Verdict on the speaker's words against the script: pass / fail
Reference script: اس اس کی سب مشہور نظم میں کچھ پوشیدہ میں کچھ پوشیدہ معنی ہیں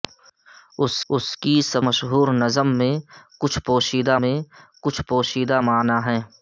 pass